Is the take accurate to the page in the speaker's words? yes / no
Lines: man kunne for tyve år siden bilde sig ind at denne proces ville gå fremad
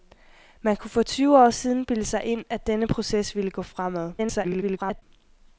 no